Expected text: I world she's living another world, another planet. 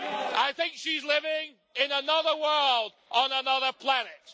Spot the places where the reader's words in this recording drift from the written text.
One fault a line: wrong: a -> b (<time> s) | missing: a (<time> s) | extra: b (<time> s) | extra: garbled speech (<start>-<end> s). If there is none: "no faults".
wrong: world -> think (0.5 s)
extra: in (1.8 s)
extra: on (3.1 s)